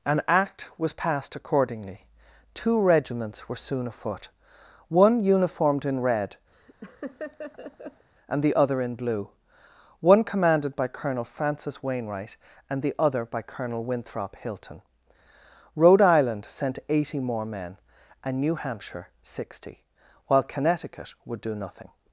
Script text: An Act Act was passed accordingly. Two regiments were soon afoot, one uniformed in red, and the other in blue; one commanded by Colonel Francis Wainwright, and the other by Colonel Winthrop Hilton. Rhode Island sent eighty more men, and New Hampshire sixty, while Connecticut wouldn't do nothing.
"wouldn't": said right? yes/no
no